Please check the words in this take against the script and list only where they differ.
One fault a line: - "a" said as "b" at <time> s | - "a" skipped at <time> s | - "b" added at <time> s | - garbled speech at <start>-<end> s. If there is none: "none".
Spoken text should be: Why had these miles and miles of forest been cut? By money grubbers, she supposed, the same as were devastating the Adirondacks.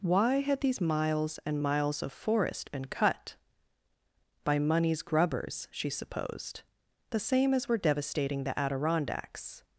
- "money" said as "moneys" at 4.6 s